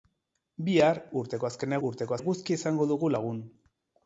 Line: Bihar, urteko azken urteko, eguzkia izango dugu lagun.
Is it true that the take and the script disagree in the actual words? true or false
false